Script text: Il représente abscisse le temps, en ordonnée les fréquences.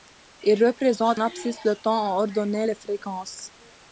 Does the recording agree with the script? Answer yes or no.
yes